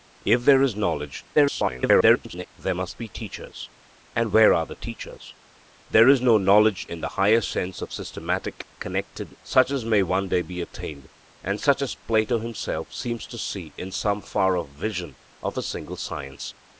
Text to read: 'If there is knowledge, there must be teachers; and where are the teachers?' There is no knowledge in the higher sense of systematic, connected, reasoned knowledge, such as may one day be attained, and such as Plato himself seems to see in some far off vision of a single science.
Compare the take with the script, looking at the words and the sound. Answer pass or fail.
fail